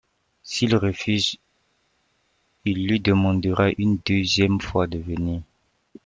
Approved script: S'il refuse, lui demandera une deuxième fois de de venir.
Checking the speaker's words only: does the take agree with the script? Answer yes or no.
no